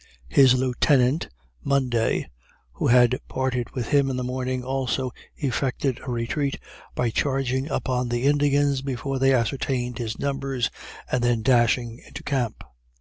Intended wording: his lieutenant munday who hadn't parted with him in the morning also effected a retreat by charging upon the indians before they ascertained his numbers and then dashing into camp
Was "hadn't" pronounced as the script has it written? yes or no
no